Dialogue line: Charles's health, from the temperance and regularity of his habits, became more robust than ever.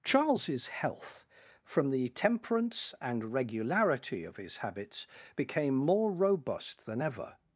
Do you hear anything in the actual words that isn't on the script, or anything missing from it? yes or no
no